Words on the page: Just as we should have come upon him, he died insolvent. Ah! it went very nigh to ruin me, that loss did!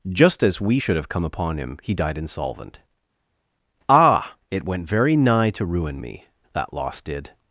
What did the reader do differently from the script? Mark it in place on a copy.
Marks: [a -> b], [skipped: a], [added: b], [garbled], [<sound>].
Just as we should have come upon him, he died insolvent. Ah! it went very nigh to ruin me, that loss did!